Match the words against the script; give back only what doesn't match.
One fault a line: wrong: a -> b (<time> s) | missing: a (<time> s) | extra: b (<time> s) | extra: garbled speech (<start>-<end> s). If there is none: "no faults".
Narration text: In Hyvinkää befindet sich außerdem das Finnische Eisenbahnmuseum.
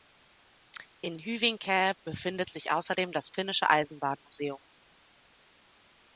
no faults